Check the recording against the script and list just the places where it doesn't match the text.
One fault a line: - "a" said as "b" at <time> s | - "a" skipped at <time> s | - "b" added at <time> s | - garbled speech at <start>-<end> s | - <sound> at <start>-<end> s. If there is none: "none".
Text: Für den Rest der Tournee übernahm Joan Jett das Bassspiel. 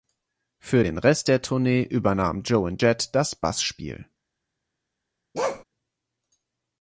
- bark at 5.3-5.6 s